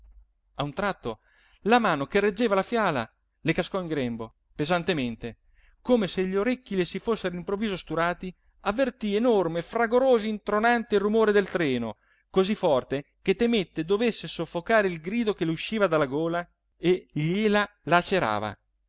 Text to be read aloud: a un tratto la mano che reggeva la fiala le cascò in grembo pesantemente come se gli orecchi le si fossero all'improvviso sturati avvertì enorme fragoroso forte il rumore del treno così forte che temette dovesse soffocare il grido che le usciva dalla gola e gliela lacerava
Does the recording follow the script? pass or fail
fail